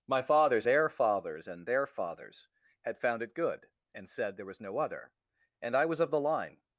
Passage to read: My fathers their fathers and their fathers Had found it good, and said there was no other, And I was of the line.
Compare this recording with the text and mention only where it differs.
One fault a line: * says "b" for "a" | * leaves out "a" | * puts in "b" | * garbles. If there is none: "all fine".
all fine